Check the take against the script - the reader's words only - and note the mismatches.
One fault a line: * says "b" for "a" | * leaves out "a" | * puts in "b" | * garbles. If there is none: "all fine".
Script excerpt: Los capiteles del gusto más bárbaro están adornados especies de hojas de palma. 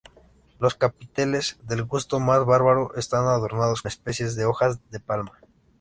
all fine